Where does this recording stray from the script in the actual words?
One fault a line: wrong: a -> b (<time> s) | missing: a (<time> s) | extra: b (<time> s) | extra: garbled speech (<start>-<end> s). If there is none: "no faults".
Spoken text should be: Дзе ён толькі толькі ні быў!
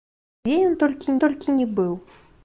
no faults